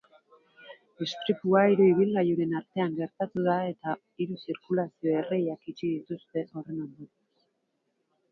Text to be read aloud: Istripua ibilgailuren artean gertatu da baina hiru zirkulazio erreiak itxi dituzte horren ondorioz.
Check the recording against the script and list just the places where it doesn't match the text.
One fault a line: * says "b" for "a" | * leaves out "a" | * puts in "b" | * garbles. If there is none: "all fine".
* puts in "hiru"
* says "eta" for "baina"